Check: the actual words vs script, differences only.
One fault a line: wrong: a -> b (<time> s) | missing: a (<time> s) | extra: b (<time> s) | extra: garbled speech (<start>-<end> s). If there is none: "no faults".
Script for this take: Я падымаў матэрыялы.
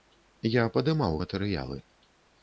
no faults